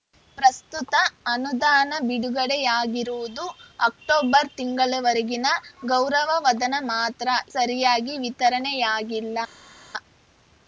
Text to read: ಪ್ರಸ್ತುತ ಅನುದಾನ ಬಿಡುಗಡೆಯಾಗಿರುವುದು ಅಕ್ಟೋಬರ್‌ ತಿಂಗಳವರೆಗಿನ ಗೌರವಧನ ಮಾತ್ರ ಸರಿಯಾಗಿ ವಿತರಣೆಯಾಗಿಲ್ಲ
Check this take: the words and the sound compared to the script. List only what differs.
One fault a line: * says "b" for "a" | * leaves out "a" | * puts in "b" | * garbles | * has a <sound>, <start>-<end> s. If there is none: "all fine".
all fine